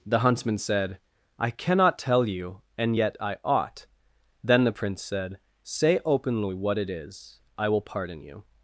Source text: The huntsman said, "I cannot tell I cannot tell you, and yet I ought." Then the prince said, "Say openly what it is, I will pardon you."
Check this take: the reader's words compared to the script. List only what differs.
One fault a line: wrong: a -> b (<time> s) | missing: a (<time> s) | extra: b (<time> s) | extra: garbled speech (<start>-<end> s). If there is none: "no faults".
missing: I cannot tell (2.2 s)